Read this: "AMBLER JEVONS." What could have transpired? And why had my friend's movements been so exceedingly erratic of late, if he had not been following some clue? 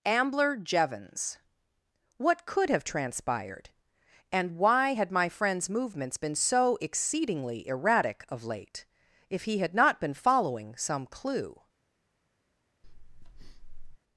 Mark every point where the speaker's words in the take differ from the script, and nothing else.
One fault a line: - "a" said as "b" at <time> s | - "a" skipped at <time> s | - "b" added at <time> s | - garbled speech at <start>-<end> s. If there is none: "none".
none